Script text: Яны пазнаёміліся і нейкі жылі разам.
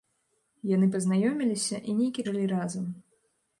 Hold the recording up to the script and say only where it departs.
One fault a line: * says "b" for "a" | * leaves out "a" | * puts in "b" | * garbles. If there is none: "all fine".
all fine